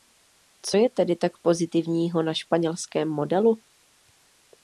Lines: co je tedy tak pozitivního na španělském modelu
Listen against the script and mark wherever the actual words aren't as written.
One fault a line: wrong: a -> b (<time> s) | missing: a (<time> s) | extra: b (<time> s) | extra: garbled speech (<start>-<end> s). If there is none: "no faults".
no faults